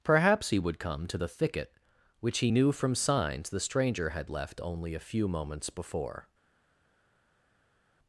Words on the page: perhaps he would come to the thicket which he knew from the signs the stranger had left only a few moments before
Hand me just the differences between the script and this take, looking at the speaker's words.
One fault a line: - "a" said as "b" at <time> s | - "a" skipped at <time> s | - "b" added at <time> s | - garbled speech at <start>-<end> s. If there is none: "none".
- "the" skipped at 2.9 s